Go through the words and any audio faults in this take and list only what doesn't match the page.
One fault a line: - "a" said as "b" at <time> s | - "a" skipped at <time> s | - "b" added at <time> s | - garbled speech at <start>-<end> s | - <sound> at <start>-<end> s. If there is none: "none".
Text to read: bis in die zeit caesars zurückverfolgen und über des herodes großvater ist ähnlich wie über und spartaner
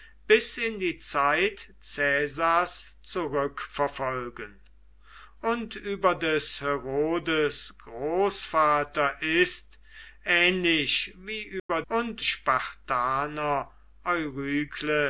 - dropout at 11.6-11.7 s